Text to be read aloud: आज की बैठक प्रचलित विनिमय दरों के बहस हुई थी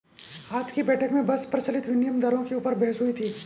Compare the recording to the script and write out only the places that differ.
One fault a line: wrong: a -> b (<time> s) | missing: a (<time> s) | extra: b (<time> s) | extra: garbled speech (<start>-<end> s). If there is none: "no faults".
extra: में बस (1.1 s)
extra: ऊपर (2.6 s)